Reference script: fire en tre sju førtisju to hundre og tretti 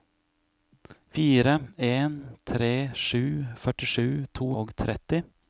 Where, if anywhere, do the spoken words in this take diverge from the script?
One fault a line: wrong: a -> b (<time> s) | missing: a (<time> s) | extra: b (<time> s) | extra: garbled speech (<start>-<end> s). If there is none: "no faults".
missing: hundre (4.5 s)